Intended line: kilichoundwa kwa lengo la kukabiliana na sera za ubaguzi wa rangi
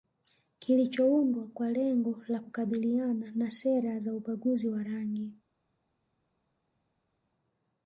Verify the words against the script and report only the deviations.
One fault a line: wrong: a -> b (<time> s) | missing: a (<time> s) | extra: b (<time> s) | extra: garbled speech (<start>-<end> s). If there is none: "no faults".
no faults